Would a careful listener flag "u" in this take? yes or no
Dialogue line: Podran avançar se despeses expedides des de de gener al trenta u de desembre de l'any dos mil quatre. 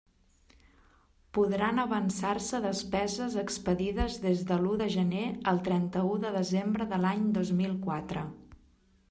no